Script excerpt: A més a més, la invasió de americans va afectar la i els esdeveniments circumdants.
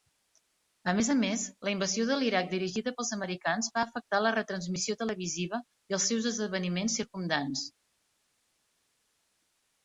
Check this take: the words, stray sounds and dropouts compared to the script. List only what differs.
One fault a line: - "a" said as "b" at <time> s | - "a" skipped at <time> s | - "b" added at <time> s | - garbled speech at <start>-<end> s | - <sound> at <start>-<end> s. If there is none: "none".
- "l'Iraq dirigida pels" added at 2.2 s
- "retransmissió televisiva" added at 4.4 s
- "seus" added at 6.1 s